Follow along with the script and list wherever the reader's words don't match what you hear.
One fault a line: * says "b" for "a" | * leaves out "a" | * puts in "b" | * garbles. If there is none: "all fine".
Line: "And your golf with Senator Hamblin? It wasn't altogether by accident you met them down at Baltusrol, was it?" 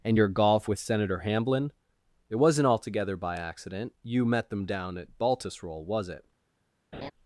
all fine